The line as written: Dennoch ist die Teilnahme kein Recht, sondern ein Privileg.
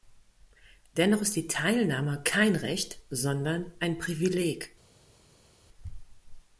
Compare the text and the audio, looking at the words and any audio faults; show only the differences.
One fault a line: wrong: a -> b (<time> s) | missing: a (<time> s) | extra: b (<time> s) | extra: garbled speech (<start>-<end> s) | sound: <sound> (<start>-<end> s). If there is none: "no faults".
no faults